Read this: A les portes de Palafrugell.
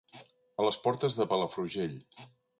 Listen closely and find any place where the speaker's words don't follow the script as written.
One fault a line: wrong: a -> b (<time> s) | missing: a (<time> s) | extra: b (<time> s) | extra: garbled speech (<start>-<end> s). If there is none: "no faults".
no faults